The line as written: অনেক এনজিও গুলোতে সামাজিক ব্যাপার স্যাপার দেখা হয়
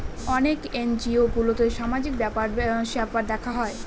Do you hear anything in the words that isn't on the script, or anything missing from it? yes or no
no